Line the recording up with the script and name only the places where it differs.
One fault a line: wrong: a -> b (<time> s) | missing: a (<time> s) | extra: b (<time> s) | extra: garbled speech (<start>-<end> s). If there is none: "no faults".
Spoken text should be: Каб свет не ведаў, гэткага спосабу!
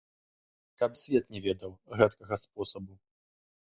no faults